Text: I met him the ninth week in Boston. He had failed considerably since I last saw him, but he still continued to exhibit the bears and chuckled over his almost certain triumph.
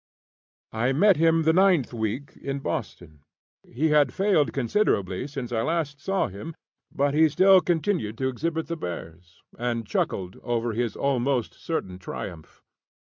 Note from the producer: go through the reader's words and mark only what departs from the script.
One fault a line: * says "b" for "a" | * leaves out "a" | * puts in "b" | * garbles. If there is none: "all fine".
all fine